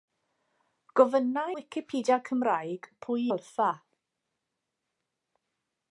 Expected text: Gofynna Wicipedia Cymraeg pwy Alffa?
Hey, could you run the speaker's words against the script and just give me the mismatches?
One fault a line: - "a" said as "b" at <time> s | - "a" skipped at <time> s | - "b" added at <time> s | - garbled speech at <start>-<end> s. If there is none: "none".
none